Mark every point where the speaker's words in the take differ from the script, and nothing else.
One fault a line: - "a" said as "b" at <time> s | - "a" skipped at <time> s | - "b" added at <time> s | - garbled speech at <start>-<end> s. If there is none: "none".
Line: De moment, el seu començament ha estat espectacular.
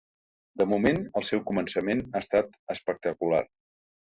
none